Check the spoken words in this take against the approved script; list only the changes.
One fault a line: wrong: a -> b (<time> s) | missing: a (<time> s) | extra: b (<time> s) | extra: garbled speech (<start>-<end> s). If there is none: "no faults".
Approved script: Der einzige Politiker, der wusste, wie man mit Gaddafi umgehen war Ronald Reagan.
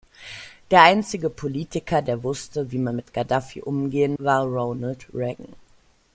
no faults